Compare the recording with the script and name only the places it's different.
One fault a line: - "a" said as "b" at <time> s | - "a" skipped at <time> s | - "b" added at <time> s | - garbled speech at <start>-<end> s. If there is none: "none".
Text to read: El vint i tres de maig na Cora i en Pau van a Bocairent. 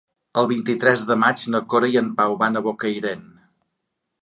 none